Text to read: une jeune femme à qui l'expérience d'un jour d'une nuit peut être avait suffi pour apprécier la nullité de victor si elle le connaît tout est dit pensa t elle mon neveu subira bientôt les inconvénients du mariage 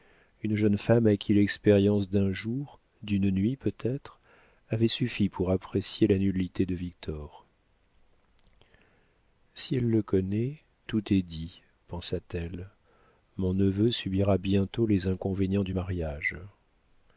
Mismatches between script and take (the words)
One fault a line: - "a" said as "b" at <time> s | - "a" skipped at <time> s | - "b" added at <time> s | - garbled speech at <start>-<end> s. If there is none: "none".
none